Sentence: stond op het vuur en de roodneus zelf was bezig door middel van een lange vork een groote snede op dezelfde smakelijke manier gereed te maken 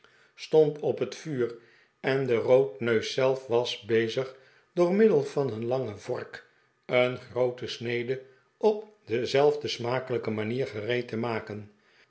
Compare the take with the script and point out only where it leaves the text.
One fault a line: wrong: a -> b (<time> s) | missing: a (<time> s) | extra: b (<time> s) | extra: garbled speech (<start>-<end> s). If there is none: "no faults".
no faults